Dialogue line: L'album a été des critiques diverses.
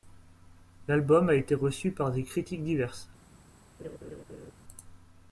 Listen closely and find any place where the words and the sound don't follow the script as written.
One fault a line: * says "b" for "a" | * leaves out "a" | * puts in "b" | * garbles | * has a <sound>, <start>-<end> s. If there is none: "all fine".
* puts in "reçu par"
* has a laugh, 3.8-4.5 s